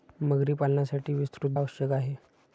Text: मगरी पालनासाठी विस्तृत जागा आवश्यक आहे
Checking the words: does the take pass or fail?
fail